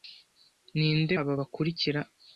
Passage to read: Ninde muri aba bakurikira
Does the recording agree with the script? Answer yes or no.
no